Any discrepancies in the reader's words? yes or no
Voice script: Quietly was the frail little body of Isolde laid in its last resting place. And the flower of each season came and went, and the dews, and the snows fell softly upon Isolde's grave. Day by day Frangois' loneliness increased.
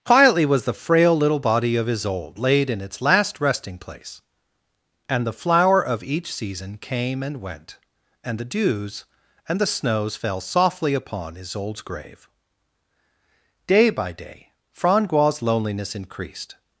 no